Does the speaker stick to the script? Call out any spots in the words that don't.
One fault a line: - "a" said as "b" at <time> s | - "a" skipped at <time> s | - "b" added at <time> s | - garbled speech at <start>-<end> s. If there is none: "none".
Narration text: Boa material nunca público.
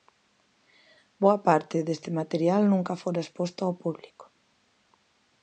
- "parte deste" added at 1.5 s
- "fora exposto ao" added at 3.0 s